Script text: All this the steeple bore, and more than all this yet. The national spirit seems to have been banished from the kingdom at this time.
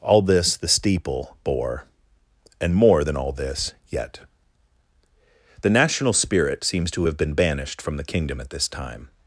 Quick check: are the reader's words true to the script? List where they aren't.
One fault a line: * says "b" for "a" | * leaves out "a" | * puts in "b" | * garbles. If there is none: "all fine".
all fine